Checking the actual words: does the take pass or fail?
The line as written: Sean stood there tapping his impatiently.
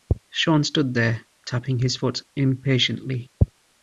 fail